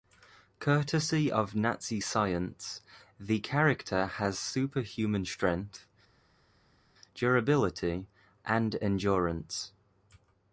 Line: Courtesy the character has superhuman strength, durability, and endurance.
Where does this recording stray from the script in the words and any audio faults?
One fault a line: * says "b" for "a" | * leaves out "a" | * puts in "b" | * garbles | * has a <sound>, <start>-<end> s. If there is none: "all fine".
* puts in "of Nazi science"